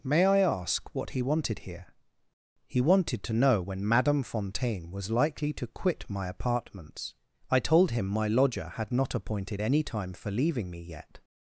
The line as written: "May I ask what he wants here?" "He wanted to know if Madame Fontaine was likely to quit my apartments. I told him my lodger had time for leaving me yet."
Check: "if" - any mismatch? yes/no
yes